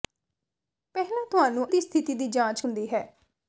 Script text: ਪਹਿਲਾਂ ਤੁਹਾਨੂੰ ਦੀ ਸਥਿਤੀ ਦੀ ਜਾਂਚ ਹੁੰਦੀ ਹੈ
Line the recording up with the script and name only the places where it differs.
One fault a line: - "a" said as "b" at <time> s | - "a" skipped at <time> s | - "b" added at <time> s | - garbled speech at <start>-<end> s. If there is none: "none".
none